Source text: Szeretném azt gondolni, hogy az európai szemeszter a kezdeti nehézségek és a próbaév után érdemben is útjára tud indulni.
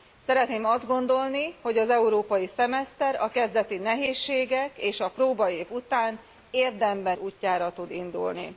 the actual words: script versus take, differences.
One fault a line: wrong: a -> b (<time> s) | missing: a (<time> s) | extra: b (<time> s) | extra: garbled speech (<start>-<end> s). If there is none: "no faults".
missing: is (7.2 s)